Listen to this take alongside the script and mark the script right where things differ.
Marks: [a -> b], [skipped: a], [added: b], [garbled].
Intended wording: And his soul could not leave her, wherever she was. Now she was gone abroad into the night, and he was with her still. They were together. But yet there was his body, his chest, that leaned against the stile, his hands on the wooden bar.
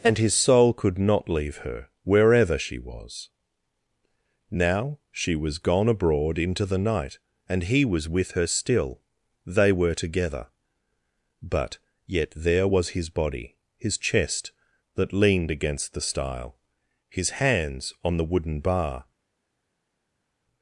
And his soul could not leave her, wherever she was. Now she was gone abroad into the night, and he was with her still. They were together. But yet there was his body, his chest, that leaned against the stile, his hands on the wooden bar.